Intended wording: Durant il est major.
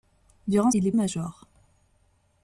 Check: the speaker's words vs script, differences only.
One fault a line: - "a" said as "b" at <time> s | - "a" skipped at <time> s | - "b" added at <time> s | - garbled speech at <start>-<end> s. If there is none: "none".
none